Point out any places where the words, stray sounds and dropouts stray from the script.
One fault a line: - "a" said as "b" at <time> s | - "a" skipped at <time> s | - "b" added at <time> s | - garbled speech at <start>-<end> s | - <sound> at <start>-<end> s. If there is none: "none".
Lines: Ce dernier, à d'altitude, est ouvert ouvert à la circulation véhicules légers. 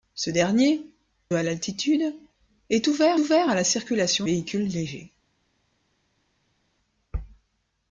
none